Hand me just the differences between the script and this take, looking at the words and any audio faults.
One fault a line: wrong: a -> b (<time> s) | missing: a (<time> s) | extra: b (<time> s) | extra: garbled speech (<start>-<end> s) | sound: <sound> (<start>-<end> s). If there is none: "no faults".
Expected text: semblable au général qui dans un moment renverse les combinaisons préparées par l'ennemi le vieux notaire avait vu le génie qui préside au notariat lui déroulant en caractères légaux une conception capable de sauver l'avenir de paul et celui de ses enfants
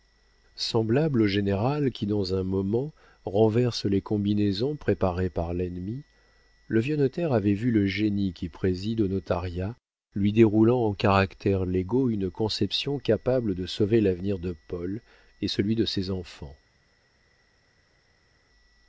no faults